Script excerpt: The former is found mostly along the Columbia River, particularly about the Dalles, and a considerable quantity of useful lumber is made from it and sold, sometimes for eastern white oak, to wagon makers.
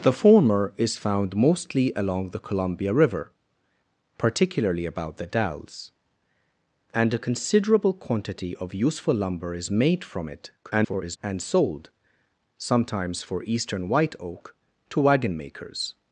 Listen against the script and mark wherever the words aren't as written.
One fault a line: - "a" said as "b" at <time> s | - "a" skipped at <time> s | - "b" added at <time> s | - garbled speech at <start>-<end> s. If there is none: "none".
- garbled speech at 10.6-11.2 s